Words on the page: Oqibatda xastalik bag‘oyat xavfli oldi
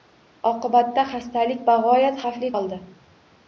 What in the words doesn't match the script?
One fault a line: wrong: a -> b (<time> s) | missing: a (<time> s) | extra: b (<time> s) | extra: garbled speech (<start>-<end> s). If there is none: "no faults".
no faults